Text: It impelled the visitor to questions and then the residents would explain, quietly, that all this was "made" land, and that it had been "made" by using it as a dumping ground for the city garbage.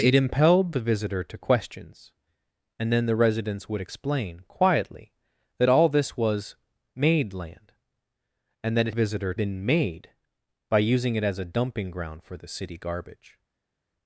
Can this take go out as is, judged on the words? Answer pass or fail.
fail